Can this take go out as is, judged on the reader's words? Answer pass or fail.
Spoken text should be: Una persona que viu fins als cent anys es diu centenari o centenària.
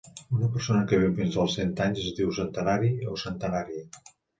pass